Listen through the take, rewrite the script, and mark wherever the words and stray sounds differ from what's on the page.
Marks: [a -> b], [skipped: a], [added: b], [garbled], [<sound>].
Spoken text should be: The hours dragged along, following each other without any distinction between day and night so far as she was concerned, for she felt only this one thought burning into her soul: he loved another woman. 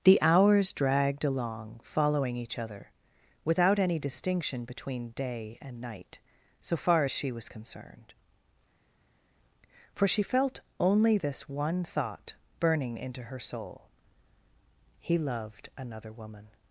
The hours dragged along, following each other without any distinction between day and night so far as she was concerned, for she felt only this one thought burning into her soul: he loved another woman.